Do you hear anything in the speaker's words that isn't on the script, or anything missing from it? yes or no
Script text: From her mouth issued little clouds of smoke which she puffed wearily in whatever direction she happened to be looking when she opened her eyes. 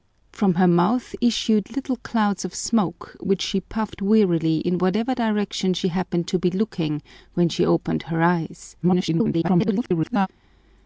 yes